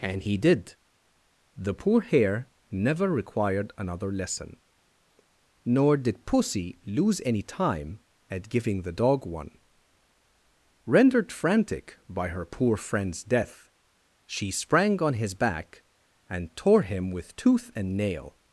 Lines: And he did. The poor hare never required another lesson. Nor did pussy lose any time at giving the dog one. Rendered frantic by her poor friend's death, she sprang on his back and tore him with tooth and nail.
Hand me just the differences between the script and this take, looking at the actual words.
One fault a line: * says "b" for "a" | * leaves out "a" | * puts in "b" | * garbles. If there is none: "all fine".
all fine